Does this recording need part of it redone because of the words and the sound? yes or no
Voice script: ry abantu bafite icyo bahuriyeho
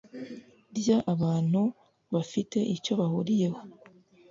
no